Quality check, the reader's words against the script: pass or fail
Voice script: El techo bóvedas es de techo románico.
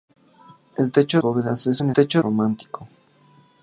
pass